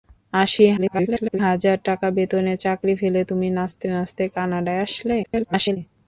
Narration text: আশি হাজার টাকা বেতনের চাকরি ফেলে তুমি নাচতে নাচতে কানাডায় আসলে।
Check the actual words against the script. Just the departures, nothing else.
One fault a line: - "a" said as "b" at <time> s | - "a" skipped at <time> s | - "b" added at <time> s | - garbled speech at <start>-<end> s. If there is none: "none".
- garbled speech at 0.8-1.4 s
- garbled speech at 5.2-5.8 s